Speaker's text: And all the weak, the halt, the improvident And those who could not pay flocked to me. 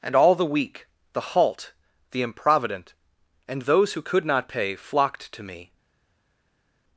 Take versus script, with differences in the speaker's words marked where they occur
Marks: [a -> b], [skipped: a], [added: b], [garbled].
And all the weak, the halt, the improvident And those who could not pay flocked to me.